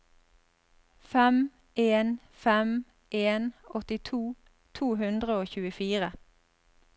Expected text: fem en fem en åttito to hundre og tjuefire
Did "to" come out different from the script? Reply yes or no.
no